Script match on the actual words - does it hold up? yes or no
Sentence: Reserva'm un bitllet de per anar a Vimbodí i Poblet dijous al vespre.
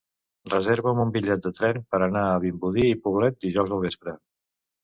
no